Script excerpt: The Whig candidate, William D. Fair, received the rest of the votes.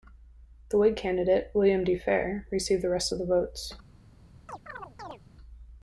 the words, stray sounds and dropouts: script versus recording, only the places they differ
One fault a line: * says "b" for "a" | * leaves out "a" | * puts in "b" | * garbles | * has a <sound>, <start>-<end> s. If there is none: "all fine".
* has a chirp, 4.5-5.2 s